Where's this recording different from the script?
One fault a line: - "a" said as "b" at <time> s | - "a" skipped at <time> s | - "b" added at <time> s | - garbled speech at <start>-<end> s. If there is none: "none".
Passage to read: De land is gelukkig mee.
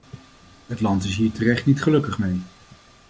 - "De" said as "Het" at 0.7 s
- "hier terecht niet" added at 1.1 s